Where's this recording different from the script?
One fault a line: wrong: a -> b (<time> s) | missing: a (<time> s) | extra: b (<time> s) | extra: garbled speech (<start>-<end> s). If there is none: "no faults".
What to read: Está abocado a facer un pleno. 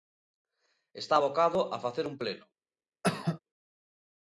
no faults